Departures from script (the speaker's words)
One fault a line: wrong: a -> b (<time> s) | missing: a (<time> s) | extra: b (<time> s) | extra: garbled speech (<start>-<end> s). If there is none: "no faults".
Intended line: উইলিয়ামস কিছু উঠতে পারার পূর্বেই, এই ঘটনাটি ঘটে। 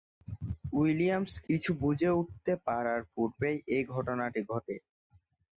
extra: বুঝে (1.8 s)